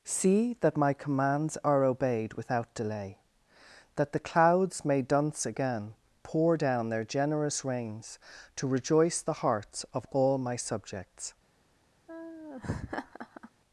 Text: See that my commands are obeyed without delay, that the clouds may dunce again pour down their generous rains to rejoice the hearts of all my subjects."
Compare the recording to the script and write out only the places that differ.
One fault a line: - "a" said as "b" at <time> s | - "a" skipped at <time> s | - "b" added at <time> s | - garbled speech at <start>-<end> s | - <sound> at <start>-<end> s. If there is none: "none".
- laugh at 12.1-13.5 s